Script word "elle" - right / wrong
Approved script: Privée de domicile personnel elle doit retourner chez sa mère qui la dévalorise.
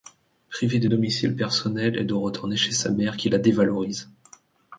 right